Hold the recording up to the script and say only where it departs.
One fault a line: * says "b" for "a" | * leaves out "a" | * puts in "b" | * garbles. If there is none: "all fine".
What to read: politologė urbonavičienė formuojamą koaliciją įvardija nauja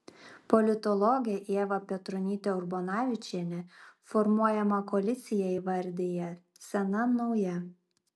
* puts in "ieva petronytė"
* puts in "sena"